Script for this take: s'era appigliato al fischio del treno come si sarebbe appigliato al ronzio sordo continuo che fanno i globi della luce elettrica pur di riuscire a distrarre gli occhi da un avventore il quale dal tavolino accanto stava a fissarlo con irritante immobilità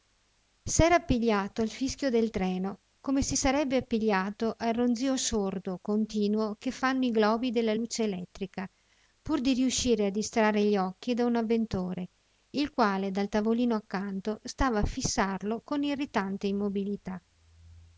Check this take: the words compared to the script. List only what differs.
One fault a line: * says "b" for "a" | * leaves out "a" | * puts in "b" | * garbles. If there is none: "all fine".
all fine